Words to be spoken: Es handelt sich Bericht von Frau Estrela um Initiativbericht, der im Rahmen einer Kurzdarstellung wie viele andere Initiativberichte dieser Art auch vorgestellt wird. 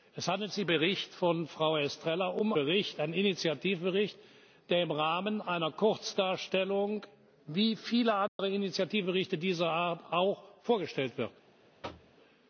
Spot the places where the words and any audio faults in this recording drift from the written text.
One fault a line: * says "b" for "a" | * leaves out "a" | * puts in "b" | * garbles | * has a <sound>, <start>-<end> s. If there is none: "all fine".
* has a dropout, 8.3-8.4 s
* has a thud, 11.8-12.2 s